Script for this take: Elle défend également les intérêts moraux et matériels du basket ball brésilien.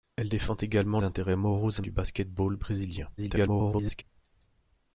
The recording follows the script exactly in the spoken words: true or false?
false